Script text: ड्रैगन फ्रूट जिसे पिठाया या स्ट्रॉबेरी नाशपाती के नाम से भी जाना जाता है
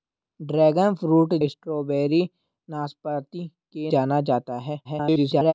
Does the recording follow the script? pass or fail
fail